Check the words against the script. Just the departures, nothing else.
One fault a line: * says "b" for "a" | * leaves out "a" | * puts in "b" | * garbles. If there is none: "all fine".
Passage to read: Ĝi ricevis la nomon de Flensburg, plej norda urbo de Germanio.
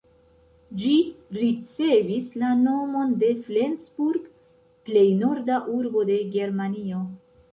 all fine